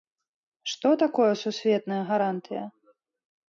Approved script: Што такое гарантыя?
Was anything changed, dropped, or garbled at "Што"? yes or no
no